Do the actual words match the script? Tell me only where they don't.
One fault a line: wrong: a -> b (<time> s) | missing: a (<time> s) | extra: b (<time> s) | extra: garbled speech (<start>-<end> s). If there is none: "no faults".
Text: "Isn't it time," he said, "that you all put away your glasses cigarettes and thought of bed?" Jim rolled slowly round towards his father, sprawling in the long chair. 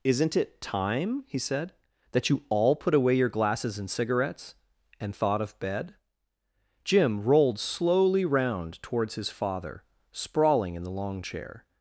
extra: and (3.8 s)